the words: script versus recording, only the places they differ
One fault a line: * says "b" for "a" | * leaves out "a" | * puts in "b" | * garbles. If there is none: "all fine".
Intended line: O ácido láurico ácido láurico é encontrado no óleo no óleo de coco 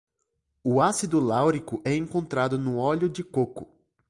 * leaves out "ácido láurico"
* leaves out "no óleo"